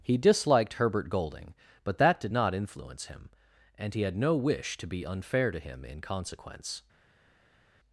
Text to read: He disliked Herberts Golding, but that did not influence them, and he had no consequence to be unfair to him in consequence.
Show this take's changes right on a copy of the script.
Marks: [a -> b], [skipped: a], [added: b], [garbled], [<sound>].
He disliked [Herberts -> Herbert] Golding, but that did not influence [them, -> him] and he had no [consequence -> wish] to be unfair to him in consequence.